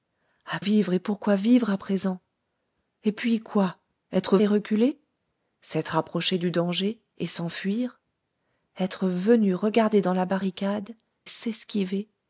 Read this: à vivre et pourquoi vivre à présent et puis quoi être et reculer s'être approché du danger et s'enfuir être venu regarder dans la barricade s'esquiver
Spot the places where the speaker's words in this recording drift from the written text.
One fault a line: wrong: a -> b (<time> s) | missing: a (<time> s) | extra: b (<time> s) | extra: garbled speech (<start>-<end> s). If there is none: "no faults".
no faults